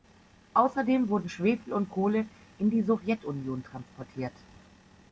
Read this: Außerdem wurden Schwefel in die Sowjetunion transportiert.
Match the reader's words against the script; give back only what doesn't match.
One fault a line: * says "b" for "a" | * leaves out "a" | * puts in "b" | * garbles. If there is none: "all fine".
* puts in "und Kohle"